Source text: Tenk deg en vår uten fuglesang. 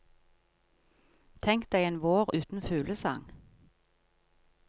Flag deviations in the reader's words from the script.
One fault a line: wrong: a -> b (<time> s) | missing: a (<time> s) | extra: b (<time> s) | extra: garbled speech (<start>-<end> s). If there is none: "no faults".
no faults